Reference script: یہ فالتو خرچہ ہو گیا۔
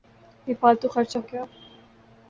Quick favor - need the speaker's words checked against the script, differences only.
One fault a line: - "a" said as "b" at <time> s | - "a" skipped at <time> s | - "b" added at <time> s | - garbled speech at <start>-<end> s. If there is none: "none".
- "ہو" skipped at 1.2 s